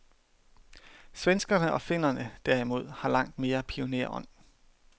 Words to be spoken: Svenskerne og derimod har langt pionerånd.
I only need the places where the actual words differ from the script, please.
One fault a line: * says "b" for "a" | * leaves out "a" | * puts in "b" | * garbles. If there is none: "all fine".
* puts in "finnerne"
* puts in "mere"